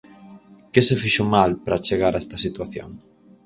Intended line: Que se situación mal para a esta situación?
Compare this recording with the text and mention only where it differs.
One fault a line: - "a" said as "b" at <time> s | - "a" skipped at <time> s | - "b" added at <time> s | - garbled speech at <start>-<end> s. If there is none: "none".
- "situación" said as "fixo" at 1.0 s
- "chegar" added at 1.9 s